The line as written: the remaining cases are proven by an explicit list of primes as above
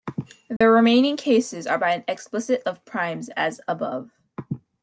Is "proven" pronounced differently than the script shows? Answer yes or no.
yes